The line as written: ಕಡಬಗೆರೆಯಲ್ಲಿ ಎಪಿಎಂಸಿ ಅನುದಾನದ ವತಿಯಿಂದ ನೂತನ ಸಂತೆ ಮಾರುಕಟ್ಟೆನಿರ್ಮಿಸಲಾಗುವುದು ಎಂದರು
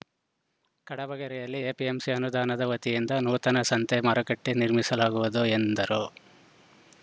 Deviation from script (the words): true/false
false